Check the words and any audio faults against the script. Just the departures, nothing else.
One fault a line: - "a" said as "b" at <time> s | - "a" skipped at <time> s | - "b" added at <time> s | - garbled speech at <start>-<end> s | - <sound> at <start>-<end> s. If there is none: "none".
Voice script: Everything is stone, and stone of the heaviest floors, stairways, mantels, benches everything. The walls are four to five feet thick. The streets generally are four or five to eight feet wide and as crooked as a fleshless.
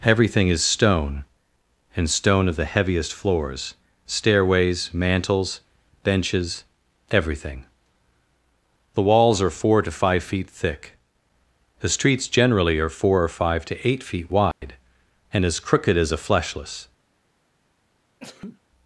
- dropout at 14.5-14.6 s
- sneeze at 18.2-18.6 s